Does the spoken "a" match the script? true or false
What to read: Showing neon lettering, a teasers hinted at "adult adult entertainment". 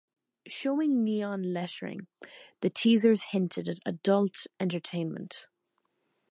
false